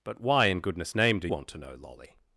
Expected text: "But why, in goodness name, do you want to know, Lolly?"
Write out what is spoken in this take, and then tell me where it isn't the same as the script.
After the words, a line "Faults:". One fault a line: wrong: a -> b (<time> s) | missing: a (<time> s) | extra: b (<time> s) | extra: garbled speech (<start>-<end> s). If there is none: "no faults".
"But why, in goodness name, do want to know, Lolly?"
Faults:
missing: you (1.3 s)